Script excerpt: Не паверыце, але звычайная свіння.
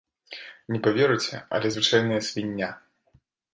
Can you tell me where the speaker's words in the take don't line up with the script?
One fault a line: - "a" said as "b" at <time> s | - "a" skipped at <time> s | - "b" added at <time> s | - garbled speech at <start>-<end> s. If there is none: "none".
none